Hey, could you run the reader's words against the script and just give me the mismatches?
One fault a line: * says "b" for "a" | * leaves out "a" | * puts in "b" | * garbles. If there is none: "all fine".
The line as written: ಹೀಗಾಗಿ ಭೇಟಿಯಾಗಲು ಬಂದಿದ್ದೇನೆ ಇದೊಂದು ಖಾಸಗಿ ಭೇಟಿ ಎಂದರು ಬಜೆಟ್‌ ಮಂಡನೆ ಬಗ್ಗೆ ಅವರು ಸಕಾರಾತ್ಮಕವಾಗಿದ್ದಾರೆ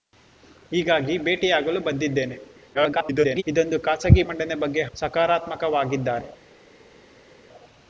* garbles
* leaves out "ಭೇಟಿ ಎಂದರು ಬಜೆಟ್"
* leaves out "ಅವರು"